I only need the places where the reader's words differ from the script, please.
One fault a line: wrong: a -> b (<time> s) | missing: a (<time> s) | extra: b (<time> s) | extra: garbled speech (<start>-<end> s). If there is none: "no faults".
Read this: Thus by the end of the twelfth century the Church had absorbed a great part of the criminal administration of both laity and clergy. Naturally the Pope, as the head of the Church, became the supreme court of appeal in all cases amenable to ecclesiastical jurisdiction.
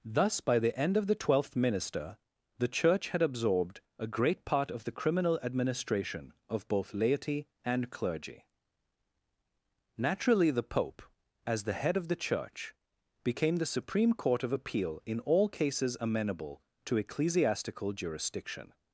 wrong: century -> minister (1.6 s)